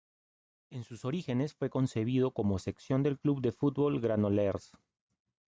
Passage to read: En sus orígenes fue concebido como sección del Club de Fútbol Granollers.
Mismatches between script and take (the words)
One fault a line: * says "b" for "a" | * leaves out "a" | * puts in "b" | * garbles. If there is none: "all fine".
all fine